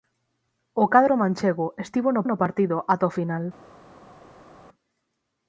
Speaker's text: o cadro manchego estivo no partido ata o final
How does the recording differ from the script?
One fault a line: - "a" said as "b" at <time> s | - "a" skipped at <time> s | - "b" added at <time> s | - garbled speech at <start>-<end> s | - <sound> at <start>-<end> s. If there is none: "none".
- "no" added at 2.3 s